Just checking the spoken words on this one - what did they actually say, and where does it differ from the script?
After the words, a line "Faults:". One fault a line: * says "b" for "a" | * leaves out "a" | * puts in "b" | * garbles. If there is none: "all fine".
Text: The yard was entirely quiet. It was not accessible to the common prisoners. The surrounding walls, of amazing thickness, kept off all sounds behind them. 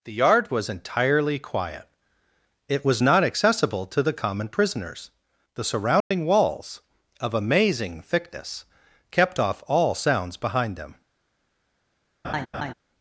The yard was entirely quiet. It was not accessible to the common prisoners. The surrounding walls, of amazing thickness, kept off all sounds behind them.
Faults:
all fine